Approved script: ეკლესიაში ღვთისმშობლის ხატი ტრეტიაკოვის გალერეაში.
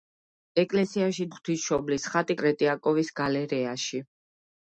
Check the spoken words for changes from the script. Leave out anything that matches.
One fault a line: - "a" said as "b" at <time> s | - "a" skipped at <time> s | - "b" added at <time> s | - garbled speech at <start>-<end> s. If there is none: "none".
none